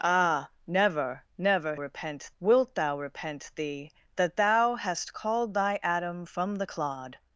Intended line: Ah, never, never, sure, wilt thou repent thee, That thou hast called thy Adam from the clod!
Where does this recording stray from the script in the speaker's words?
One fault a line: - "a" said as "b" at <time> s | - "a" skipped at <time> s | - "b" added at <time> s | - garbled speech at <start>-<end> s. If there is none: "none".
- "sure" said as "repent" at 1.8 s